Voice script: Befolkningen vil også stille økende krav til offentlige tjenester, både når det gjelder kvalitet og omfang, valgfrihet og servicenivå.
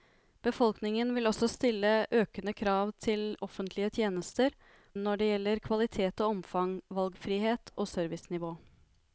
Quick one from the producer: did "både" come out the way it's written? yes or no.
no